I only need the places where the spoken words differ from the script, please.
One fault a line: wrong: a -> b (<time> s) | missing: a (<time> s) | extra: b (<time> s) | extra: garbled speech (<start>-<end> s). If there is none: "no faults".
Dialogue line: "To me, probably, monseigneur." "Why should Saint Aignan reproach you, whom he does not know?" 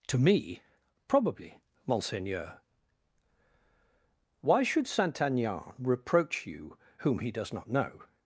no faults